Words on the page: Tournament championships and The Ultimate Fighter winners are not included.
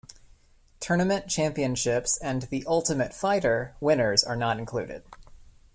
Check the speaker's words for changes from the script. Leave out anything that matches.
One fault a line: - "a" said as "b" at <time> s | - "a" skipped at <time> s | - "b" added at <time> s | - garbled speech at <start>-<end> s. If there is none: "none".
none